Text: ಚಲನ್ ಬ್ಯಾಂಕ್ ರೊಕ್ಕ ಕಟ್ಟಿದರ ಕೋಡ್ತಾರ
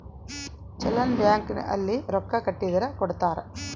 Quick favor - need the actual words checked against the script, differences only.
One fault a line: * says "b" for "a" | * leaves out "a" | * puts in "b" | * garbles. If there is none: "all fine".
* puts in "ಅಲ್ಲಿ"